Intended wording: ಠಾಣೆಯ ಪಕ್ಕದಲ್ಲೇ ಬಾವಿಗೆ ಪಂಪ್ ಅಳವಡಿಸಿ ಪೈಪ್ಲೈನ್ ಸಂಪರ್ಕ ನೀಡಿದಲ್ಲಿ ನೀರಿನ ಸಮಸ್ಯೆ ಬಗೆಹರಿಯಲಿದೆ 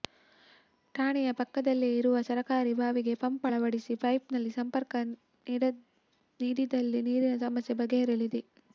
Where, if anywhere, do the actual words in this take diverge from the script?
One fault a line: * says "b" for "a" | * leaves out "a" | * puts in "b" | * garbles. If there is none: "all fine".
* puts in "ಇರುವ ಸರಕಾರಿ"